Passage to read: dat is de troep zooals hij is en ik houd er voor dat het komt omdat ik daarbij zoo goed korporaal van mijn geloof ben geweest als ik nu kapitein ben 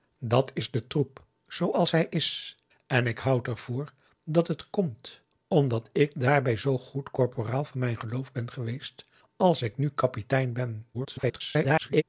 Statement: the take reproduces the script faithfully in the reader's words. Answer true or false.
false